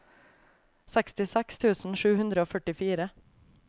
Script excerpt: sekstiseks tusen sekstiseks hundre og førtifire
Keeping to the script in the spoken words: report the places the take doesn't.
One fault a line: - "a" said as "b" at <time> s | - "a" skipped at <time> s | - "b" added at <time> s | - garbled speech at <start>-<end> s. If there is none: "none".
- "sekstiseks" said as "sju" at 2.0 s